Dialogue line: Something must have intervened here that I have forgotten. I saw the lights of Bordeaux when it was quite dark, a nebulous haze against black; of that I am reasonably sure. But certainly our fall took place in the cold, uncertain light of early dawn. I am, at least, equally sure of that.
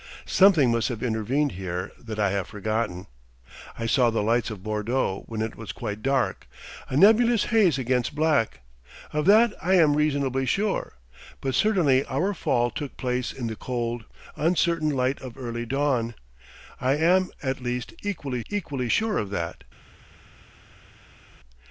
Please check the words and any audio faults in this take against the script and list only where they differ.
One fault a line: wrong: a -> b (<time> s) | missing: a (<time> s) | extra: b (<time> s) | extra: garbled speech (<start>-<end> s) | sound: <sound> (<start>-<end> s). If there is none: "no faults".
extra: equally (18.5 s)